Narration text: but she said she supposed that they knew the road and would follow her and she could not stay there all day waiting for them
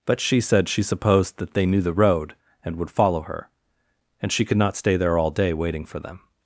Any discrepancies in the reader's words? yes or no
no